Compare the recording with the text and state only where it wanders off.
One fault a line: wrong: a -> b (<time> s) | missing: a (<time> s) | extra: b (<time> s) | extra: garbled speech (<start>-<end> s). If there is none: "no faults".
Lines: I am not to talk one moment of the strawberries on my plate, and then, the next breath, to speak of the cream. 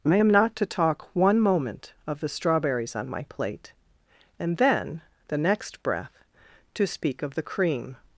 no faults